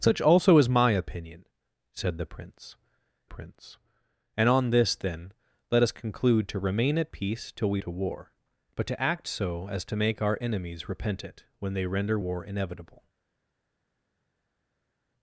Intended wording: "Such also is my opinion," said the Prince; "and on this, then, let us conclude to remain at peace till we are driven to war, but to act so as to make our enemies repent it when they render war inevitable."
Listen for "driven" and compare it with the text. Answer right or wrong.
wrong